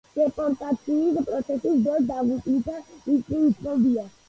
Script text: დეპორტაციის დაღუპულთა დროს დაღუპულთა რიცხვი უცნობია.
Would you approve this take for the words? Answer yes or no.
no